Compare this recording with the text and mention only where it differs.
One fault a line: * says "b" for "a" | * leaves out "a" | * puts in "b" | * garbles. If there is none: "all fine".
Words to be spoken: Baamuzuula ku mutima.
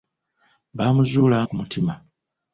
all fine